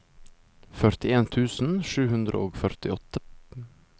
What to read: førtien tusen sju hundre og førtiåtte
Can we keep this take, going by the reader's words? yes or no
yes